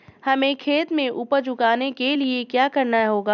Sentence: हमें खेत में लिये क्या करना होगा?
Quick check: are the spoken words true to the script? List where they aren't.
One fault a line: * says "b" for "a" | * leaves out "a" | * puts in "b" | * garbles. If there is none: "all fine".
* puts in "उपज उगाने के"